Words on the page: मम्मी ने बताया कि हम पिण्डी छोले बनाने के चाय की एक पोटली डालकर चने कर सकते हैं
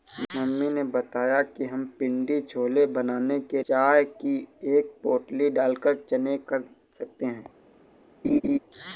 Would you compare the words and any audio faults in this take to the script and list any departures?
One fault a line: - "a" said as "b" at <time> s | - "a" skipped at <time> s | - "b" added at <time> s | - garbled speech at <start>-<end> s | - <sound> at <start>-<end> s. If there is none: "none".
- laugh at 8.2-8.6 s